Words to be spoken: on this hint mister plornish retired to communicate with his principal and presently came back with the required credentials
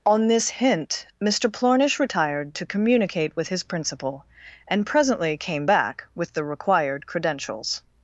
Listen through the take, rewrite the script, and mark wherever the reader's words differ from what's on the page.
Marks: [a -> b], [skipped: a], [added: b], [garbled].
on this hint mister plornish retired to communicate with his principal and presently came back with the required credentials